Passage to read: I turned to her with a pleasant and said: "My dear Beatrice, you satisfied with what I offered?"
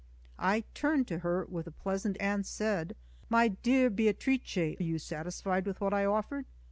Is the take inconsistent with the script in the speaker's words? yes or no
no